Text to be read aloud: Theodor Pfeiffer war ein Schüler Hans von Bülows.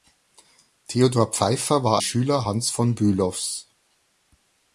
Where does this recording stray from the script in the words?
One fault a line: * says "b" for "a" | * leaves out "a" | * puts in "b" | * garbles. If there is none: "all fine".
* leaves out "ein"